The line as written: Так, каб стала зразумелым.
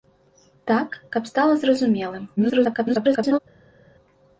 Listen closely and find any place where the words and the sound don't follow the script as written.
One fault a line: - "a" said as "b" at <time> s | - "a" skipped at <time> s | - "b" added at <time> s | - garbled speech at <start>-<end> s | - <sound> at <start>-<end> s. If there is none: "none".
- garbled speech at 2.4-3.4 s